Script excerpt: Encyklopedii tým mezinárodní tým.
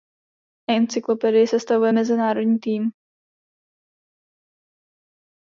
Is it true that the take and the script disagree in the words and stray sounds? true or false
true